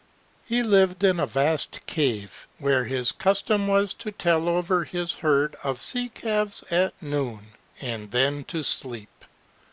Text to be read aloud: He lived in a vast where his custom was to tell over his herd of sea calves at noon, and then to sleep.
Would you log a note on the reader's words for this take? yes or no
yes